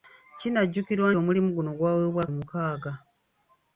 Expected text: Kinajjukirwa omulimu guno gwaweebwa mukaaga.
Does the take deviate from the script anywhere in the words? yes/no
no